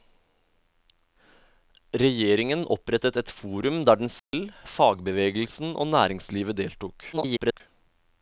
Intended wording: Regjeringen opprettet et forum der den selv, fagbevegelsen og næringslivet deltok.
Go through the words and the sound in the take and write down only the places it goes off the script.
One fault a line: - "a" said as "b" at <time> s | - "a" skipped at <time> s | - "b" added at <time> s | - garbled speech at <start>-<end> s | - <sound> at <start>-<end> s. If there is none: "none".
- dropout at 4.2-4.3 s
- garbled speech at 7.1-7.6 s